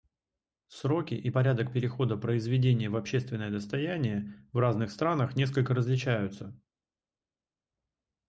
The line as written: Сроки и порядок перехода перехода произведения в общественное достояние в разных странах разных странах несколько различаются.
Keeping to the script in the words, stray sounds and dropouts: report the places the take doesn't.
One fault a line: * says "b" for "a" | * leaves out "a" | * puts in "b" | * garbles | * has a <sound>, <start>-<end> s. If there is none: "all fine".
* leaves out "перехода"
* leaves out "разных странах"